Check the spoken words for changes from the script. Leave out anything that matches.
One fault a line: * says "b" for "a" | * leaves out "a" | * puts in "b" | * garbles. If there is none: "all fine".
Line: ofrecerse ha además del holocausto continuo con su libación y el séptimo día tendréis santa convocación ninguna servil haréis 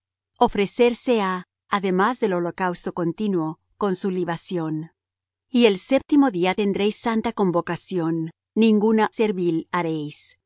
all fine